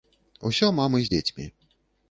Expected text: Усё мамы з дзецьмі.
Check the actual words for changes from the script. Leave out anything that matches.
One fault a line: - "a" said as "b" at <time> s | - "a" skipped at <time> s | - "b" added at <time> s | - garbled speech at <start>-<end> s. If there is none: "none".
none